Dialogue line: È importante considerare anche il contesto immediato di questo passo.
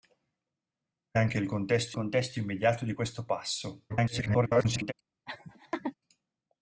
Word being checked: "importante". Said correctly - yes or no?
no